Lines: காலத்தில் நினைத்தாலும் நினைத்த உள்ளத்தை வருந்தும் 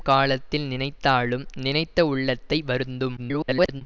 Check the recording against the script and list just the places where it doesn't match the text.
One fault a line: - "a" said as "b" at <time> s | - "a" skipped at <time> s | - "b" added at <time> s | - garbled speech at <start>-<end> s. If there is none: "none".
- garbled speech at 3.2-3.8 s